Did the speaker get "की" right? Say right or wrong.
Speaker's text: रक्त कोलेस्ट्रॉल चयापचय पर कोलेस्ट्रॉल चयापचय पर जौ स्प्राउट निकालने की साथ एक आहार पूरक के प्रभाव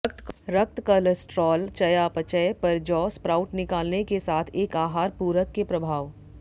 wrong